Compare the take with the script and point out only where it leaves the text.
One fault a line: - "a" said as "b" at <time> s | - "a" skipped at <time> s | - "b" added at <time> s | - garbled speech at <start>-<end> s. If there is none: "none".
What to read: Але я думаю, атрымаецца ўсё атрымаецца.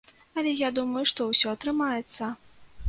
- "атрымаецца" said as "што" at 1.1 s